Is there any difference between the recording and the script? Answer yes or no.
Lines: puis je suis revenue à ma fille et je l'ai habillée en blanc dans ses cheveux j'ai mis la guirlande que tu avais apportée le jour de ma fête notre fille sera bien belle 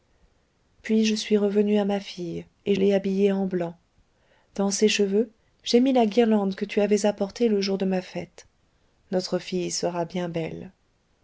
yes